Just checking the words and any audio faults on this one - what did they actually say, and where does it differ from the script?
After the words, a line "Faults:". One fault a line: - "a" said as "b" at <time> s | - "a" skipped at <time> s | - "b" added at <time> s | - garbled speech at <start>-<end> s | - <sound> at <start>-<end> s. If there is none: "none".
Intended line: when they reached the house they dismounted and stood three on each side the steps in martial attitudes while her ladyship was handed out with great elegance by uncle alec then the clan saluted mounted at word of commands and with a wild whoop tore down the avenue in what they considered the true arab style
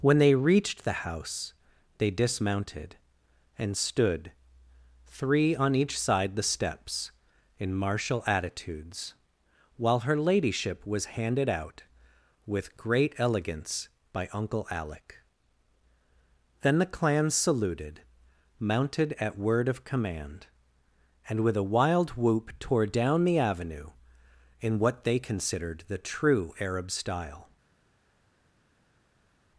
when they reached the house they dismounted and stood three on each side the steps in martial attitudes while her ladyship was handed out with great elegance by uncle alec then the clan saluted mounted at word of command and with a wild whoop tore down the avenue in what they considered the true arab style
Faults:
- "commands" said as "command" at 19.8 s